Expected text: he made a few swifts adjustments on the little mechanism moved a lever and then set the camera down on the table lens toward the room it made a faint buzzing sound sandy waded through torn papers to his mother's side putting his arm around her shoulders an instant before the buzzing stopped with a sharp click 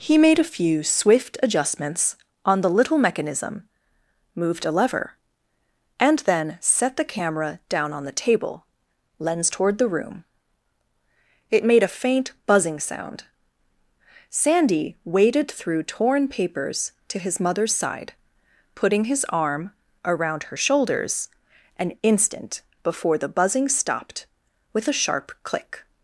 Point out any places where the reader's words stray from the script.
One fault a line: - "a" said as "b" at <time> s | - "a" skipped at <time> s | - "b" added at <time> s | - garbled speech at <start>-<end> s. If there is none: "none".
- "swifts" said as "swift" at 0.8 s